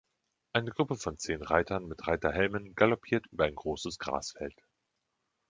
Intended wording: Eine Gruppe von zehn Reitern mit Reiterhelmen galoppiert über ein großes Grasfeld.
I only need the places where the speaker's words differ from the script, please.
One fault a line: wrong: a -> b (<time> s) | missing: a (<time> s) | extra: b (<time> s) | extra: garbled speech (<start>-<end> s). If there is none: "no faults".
no faults